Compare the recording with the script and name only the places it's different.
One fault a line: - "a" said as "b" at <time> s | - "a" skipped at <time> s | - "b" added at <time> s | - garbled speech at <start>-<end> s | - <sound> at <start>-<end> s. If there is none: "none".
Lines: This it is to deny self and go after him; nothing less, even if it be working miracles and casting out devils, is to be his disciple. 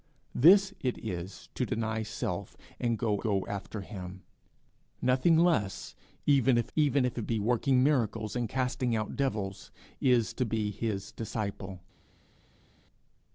- "go" added at 3.2 s
- "even if" added at 6.7 s